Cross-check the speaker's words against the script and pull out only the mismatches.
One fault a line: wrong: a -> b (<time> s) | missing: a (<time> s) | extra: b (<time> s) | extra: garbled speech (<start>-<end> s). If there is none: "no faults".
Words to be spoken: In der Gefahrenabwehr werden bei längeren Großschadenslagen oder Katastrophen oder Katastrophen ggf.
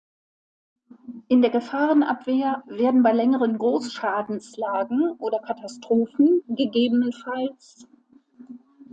missing: oder Katastrophen (6.4 s)